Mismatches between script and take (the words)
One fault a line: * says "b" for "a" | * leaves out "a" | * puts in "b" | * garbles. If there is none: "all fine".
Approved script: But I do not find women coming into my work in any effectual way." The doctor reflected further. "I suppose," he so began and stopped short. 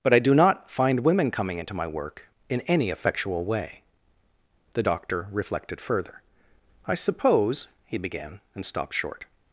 * leaves out "so"